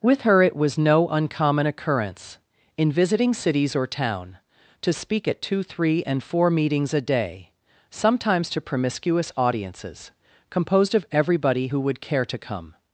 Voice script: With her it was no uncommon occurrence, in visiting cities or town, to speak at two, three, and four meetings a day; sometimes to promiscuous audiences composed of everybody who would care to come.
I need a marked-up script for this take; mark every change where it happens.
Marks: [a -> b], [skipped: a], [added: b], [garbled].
With her it was no uncommon occurrence, in visiting cities or town, to speak at two, three, and four meetings a day; sometimes to promiscuous audiences composed of everybody who would care to come.